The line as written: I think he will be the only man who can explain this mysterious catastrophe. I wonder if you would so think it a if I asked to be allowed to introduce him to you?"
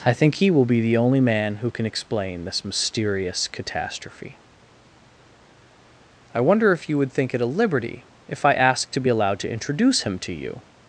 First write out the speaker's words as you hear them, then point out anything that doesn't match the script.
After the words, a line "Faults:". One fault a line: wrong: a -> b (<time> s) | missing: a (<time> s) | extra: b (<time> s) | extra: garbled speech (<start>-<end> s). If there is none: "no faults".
I think he will be the only man who can explain this mysterious catastrophe. I wonder if you would think it a liberty if I asked to be allowed to introduce him to you?"
Faults:
missing: so (7.1 s)
extra: liberty (7.5 s)